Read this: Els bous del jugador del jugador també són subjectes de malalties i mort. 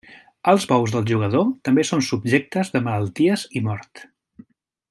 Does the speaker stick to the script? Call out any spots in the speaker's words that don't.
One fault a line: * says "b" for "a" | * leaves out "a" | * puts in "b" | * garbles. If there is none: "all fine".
* leaves out "del jugador"